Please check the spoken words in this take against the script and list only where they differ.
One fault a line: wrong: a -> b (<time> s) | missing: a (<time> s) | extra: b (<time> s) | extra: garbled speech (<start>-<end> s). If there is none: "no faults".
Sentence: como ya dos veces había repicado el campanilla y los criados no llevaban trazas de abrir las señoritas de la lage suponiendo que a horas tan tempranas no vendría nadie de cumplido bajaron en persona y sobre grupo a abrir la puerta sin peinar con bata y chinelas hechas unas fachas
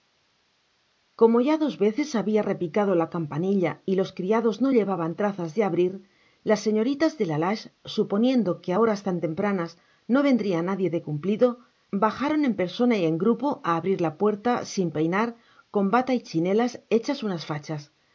wrong: el -> la (3.0 s)
wrong: sobre -> en (13.1 s)